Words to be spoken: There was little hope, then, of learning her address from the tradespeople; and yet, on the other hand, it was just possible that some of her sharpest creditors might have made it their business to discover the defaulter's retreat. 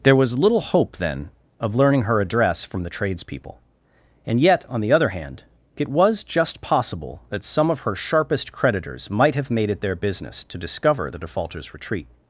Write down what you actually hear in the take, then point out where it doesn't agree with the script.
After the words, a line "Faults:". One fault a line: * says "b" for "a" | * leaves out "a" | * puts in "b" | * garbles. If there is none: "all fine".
There was little hope, then, of learning her address from the tradespeople; and yet, on the other hand, it was just possible that some of her sharpest creditors might have made it their business to discover the defaulter's retreat.
Faults:
all fine